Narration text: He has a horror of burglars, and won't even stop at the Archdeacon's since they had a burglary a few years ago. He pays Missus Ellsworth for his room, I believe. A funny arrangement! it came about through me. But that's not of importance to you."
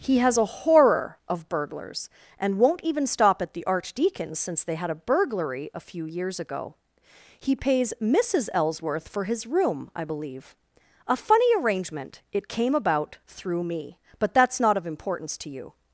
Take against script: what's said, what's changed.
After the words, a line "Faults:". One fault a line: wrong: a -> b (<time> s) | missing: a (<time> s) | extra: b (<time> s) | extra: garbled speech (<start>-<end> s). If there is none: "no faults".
He has a horror of burglars, and won't even stop at the Archdeacon's since they had a burglary a few years ago. He pays Missus Ellsworth for his room, I believe. A funny arrangement! it came about through me. But that's not of importance to you."
Faults:
no faults